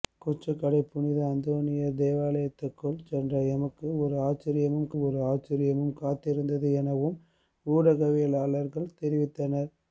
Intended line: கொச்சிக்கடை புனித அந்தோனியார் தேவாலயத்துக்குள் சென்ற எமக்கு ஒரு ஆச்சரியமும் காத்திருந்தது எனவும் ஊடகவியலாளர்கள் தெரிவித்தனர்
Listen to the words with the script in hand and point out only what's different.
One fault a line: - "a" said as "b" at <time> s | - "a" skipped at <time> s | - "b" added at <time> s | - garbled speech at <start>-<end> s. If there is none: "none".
- "ஒரு ஆச்சரியமும்" added at 5.0 s